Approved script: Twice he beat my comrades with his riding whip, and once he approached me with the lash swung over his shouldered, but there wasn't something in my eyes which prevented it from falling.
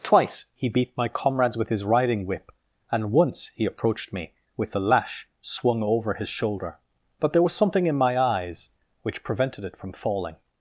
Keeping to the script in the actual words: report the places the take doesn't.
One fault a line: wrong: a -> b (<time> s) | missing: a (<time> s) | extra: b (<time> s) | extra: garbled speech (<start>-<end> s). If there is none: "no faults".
wrong: shouldered -> shoulder (6.3 s)
wrong: wasn't -> was (7.4 s)